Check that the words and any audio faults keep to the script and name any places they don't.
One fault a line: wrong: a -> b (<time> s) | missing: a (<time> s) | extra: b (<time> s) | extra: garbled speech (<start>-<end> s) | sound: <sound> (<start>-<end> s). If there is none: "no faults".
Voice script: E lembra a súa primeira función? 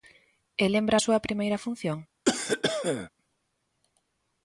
sound: cough (2.2-3.1 s)